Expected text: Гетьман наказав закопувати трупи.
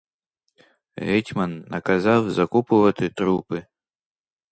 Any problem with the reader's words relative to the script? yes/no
no